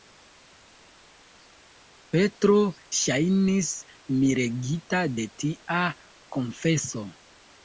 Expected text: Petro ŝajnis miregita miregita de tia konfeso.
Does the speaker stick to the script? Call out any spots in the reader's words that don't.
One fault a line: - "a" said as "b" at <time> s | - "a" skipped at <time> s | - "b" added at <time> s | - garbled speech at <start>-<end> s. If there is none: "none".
- "miregita" skipped at 5.0 s